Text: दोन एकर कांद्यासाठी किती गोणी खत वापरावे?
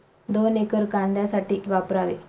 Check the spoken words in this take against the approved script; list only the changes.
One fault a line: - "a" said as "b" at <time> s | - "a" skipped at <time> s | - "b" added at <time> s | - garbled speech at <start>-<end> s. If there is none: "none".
- "किती गोणी खत" skipped at 1.6 s